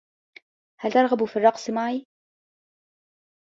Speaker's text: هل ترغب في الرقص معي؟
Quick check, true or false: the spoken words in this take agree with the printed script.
true